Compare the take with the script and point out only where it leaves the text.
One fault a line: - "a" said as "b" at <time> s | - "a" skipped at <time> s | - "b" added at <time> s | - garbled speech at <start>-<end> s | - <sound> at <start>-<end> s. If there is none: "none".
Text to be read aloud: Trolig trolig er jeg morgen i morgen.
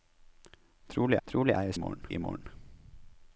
none